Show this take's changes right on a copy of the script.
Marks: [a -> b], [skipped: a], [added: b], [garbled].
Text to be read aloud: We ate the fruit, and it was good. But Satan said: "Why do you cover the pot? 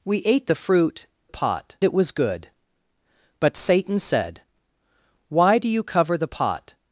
We ate the fruit, [and -> pot] it was good. But Satan said: "Why do you cover the pot?